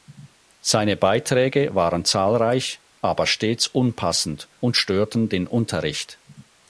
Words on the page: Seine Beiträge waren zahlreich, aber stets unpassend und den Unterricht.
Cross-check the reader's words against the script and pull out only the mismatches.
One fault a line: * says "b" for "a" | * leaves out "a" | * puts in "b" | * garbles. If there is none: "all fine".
* puts in "störten"